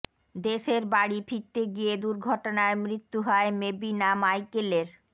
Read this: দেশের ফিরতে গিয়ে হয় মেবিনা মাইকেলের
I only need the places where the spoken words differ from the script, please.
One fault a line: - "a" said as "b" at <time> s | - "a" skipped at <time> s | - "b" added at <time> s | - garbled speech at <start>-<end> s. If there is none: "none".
- "বাড়ি" added at 0.9 s
- "দুর্ঘটনায় মৃত্যু" added at 2.0 s